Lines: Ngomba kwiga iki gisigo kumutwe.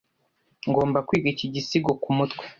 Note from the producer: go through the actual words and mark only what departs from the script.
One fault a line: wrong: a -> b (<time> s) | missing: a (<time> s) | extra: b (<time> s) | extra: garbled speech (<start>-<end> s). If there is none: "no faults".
no faults